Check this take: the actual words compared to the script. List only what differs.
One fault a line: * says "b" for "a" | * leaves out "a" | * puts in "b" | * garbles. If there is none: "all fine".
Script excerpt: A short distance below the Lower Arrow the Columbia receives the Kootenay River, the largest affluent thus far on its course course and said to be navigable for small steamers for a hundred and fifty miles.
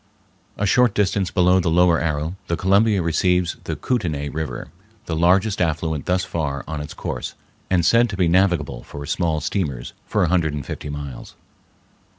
* leaves out "course"